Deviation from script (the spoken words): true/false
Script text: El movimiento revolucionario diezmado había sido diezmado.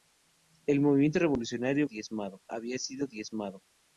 false